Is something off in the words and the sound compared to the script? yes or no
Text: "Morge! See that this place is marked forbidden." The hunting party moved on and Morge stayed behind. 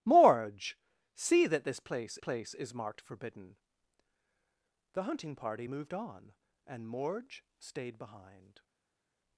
yes